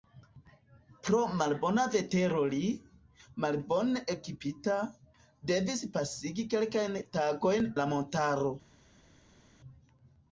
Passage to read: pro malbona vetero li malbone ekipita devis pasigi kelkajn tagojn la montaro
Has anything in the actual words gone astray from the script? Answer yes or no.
no